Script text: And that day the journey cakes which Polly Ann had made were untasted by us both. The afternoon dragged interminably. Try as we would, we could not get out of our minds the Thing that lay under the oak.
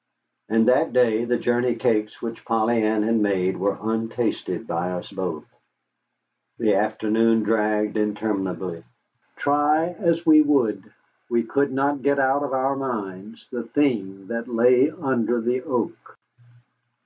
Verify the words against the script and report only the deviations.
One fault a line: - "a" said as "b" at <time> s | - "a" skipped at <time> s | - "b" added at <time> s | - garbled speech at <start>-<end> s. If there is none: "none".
none